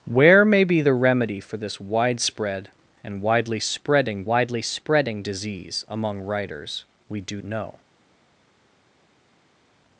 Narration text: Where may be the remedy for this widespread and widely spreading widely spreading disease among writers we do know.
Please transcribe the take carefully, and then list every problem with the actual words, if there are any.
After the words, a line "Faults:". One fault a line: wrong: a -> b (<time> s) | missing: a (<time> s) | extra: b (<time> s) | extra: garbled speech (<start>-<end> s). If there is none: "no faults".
Where may be the remedy for this widespread and widely spreading widely spreading disease among writers we do know.
Faults:
no faults